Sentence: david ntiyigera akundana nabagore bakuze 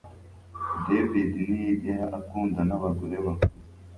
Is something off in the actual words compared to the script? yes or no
no